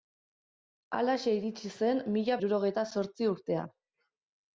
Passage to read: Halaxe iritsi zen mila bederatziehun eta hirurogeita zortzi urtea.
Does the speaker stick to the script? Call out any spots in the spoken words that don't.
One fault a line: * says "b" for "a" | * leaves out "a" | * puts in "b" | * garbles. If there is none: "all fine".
* leaves out "bederatziehun eta"